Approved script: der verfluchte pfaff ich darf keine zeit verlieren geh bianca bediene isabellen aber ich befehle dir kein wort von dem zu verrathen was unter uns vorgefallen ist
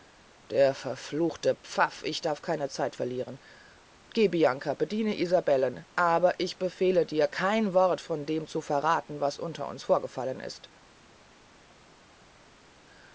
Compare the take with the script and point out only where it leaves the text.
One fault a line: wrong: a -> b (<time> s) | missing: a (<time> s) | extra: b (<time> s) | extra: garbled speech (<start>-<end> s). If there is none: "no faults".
no faults